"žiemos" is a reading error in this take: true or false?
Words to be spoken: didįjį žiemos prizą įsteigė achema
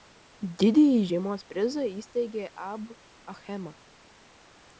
false